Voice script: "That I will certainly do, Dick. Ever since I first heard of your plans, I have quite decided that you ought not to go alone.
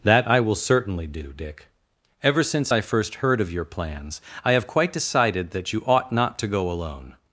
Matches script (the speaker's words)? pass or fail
pass